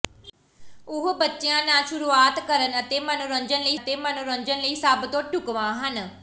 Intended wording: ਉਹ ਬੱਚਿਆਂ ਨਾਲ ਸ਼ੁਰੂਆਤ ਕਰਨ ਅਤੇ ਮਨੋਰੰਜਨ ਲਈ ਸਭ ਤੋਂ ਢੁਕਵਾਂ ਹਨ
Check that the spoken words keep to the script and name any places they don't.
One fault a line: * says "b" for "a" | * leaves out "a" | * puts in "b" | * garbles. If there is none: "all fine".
* puts in "ਅਤੇ ਮਨੋਰੰਜਨ ਲਈ"